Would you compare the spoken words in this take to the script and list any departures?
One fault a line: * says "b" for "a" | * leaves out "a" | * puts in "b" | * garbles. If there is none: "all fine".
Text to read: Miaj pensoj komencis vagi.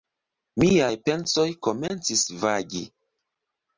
all fine